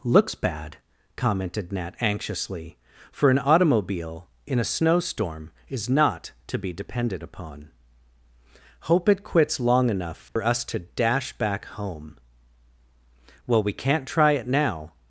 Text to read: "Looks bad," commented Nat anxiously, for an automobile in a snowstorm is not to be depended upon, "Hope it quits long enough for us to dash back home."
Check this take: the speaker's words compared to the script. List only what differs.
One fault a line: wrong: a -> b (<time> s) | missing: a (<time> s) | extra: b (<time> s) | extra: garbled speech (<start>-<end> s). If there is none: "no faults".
extra: Well we can't try it now (13.4 s)